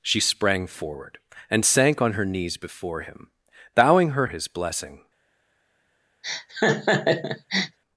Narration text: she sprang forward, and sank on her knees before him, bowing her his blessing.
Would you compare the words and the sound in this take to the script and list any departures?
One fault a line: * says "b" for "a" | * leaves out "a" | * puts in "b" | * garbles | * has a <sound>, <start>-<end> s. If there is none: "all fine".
* has a laugh, 6.2-7.8 s